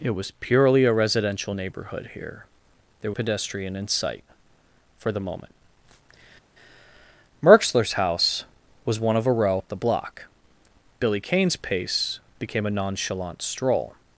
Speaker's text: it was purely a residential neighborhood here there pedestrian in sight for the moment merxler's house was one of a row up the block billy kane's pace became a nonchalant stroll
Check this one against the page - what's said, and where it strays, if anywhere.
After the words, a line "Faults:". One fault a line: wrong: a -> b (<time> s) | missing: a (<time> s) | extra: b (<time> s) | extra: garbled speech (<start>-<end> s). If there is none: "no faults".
it was purely a residential neighborhood here there pedestrian in sight for the moment merxler's house was one of a row up the block billy kane's pace became a nonchalant stroll
Faults:
no faults